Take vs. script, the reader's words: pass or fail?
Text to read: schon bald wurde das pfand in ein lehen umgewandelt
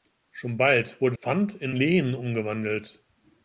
fail